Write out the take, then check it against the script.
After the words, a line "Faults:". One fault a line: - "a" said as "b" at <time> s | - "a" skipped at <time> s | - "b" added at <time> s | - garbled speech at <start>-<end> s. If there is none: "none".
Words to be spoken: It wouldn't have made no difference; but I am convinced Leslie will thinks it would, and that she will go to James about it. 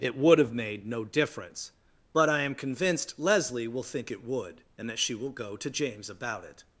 It would have made no difference; but I am convinced Leslie will think it would, and that she will go to James about it.
Faults:
- "wouldn't" said as "would" at 0.2 s
- "thinks" said as "think" at 3.8 s